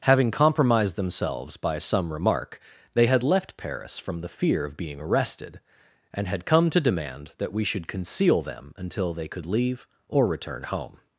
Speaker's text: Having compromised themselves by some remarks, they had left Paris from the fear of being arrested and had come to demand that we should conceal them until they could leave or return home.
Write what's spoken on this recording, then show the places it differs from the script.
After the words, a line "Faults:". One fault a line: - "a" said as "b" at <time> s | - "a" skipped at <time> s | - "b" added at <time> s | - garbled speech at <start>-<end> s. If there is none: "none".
Having compromised themselves by some remark, they had left Paris from the fear of being arrested and had come to demand that we should conceal them until they could leave or return home.
Faults:
- "remarks" said as "remark" at 2.1 s